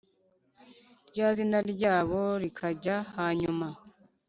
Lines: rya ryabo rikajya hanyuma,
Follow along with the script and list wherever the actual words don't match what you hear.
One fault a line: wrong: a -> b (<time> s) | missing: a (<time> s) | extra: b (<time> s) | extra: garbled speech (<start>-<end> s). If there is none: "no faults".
extra: zina (1.3 s)